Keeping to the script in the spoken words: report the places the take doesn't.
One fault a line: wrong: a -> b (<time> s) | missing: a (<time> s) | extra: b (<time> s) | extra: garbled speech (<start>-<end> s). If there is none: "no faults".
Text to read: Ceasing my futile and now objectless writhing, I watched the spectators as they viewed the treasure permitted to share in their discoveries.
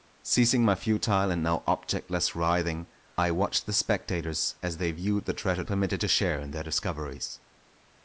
no faults